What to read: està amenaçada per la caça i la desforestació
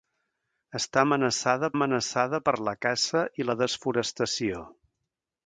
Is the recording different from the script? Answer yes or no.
yes